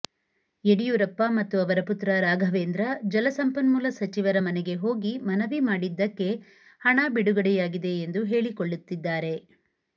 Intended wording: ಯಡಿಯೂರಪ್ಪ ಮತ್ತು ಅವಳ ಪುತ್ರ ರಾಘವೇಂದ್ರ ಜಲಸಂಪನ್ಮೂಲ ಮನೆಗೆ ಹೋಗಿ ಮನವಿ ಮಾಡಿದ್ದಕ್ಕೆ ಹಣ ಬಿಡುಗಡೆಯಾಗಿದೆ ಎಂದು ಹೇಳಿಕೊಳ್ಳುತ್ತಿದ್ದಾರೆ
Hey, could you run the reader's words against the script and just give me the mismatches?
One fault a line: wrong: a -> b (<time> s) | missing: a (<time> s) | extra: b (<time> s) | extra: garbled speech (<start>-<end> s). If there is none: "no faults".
wrong: ಅವಳ -> ಅವರ (1.6 s)
extra: ಸಚಿವರ (4.0 s)